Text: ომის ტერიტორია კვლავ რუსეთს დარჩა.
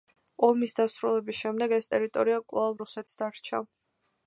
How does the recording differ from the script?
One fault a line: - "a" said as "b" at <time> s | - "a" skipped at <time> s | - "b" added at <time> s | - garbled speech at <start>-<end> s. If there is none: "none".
- "დასრულების შემდეგ ეს" added at 0.8 s